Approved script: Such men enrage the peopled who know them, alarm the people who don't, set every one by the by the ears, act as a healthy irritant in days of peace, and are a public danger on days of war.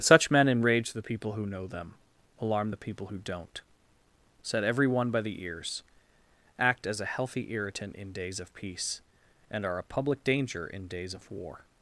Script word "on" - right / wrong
wrong